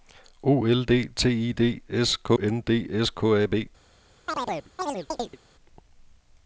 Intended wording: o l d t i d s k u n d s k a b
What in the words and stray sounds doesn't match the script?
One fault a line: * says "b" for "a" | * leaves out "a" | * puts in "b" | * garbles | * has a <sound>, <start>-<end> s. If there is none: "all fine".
* leaves out "u"
* has a chirp, 4.3-5.4 s